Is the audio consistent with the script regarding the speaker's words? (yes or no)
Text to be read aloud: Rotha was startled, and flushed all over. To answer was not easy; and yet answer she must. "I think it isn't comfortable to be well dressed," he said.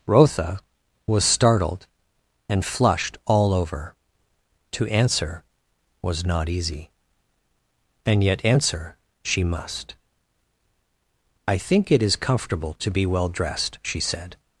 no